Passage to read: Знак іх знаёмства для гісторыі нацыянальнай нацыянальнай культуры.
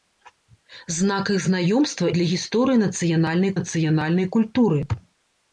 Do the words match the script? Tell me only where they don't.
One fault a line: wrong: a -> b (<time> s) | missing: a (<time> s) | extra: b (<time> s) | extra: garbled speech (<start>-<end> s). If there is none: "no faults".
no faults